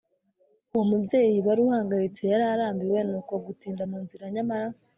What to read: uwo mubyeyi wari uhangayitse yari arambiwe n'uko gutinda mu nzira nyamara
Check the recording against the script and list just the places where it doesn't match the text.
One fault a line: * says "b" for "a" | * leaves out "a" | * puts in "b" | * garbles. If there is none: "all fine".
all fine